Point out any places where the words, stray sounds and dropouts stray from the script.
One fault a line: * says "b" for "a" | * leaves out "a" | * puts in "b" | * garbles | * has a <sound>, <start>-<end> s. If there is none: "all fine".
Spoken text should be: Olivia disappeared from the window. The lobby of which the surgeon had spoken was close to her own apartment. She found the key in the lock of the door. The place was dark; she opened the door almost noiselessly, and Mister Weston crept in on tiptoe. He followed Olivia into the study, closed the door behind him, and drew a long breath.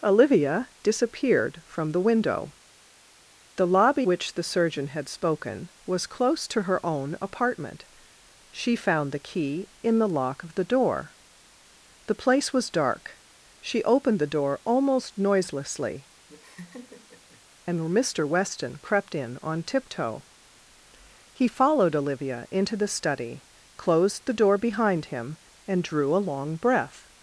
* leaves out "of"
* has a laugh, 16.3-17.4 s